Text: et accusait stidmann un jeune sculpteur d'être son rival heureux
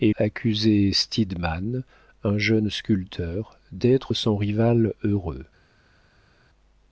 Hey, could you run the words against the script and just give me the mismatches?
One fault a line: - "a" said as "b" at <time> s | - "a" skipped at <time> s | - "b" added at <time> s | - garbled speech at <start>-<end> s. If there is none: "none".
none